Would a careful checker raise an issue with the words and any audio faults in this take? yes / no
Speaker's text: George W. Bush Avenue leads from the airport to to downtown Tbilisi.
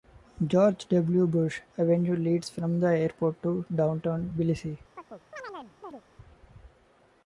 yes